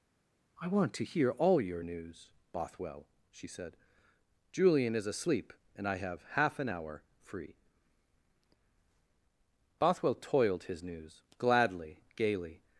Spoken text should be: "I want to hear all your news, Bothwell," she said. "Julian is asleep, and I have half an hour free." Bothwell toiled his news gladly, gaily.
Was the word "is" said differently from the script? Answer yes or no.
no